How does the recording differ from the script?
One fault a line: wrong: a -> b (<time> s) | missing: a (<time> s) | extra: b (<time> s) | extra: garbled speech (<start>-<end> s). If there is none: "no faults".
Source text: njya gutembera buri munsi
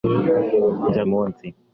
missing: gutembera buri (1.0 s)